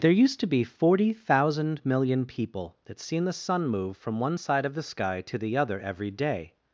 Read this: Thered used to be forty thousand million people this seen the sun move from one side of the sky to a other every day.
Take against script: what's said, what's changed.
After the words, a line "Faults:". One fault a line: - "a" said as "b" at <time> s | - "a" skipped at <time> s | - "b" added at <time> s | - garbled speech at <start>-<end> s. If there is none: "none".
There used to be forty thousand million people that seen the sun move from one side of the sky to the other every day.
Faults:
- "Thered" said as "There" at 0.0 s
- "this" said as "that" at 2.9 s
- "a" said as "the" at 5.4 s